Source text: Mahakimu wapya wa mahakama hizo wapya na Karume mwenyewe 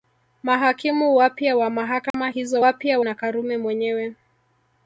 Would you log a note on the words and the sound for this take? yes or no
yes